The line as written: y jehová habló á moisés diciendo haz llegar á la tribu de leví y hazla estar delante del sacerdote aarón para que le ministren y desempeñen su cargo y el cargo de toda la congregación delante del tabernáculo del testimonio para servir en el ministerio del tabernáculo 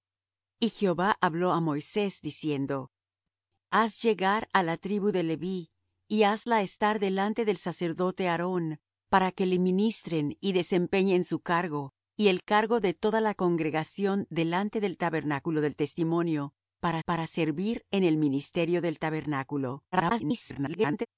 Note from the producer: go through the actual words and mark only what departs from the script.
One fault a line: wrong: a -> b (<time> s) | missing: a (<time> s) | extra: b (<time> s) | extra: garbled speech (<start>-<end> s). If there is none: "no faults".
extra: para (17.0 s)
extra: garbled speech (19.9-21.1 s)